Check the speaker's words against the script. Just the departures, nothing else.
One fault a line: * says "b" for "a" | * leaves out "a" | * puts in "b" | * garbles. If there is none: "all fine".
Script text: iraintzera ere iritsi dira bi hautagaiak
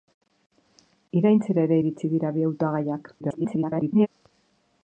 * garbles